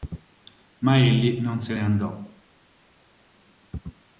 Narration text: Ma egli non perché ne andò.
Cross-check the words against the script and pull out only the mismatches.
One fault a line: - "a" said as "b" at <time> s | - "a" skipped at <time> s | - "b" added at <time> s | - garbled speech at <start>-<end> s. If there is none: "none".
- "perché" said as "se" at 1.6 s